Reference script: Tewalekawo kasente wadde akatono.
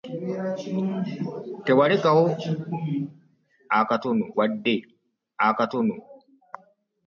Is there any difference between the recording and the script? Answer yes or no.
yes